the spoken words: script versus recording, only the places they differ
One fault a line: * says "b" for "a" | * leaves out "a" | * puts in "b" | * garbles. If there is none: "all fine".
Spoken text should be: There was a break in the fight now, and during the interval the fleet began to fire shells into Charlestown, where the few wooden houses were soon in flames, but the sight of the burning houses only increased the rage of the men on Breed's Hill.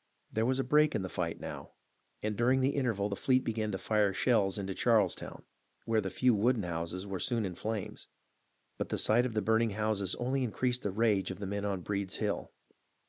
all fine